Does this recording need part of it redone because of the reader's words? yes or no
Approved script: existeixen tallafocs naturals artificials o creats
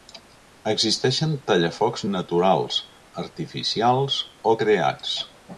no